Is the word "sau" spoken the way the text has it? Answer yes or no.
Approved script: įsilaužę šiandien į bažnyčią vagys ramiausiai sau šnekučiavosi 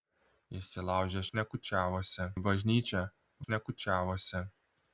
no